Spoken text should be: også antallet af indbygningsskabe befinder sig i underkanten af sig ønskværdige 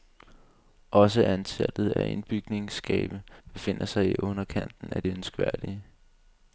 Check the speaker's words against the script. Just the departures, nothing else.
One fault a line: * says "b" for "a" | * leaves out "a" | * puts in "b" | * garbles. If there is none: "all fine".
* says "det" for "sig"